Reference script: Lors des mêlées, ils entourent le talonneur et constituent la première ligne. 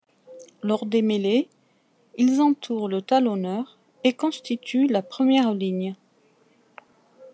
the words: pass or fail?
pass